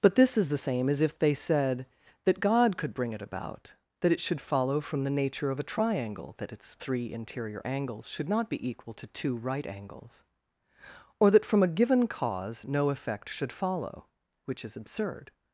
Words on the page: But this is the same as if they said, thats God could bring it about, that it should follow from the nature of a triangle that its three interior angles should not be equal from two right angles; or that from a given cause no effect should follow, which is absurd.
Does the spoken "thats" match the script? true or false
false